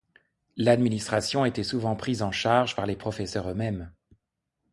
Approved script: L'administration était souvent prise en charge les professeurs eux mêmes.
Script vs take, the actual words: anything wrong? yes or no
yes